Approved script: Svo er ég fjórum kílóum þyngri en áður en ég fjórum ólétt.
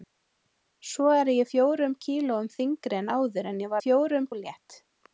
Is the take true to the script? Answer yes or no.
yes